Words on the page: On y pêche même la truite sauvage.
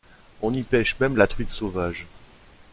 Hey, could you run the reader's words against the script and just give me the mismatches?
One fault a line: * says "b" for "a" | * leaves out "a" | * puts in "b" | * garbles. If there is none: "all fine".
all fine